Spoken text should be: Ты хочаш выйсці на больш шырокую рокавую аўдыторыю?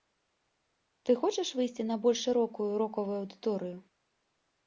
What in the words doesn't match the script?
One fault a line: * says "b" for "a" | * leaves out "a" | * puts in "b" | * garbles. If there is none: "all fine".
all fine